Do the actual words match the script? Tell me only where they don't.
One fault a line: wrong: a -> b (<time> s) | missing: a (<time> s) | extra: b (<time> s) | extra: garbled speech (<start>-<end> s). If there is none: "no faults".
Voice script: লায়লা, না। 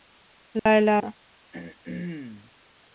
no faults